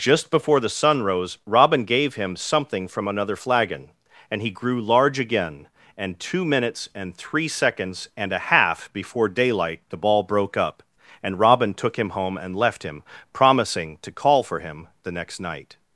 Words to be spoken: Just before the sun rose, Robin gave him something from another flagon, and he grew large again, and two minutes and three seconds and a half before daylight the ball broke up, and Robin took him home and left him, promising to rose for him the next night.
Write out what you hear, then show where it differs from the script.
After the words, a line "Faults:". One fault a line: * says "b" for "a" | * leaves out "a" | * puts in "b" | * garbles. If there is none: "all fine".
Just before the sun rose, Robin gave him something from another flagon, and he grew large again, and two minutes and three seconds and a half before daylight the ball broke up, and Robin took him home and left him, promising to call for him the next night.
Faults:
* says "call" for "rose"